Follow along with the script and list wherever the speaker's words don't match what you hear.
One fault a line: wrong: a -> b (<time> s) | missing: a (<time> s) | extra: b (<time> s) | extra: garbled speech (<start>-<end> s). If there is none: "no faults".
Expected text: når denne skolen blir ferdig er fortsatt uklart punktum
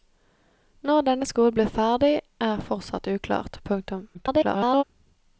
extra: garbled speech (4.1-4.8 s)